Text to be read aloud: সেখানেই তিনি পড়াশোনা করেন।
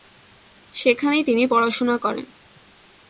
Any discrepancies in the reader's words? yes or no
no